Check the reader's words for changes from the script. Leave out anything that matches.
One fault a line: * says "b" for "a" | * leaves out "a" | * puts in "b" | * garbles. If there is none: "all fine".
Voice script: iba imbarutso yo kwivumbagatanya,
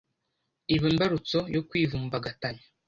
all fine